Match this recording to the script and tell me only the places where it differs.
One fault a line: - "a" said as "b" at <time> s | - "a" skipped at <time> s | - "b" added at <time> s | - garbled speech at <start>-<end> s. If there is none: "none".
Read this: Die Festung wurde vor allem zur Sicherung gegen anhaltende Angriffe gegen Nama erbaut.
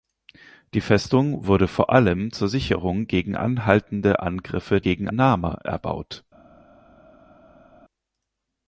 none